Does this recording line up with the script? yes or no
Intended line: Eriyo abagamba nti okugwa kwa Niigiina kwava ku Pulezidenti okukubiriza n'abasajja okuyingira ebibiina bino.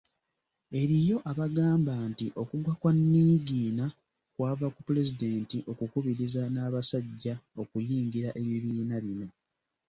yes